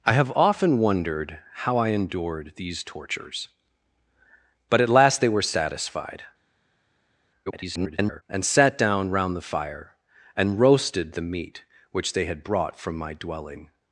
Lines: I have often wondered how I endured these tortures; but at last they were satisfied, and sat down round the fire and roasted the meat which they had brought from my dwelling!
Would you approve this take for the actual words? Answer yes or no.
no